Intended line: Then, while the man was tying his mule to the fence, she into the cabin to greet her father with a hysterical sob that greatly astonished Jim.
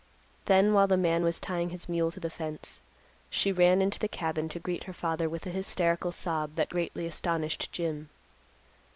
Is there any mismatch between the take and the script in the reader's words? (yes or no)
yes